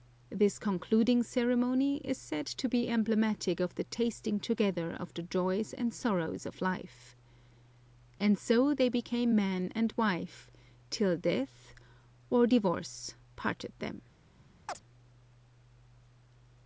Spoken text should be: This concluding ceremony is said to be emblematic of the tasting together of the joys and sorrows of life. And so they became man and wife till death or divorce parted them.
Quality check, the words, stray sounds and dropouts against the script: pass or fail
fail